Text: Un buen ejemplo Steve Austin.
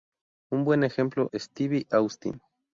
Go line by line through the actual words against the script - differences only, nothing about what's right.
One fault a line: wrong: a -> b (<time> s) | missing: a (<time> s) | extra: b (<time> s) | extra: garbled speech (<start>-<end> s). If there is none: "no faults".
no faults